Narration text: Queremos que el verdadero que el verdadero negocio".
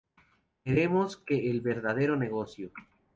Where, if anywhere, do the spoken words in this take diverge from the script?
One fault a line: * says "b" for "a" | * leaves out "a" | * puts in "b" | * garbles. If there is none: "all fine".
* leaves out "que el verdadero"